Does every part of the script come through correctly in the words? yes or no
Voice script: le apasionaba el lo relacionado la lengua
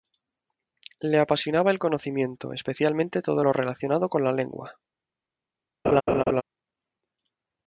no